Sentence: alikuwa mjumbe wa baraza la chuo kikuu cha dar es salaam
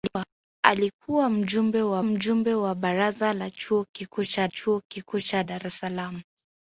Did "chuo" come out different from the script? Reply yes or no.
no